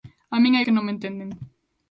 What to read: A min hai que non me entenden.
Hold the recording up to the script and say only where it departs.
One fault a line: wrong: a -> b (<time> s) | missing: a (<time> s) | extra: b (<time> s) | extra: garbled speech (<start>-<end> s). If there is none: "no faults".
no faults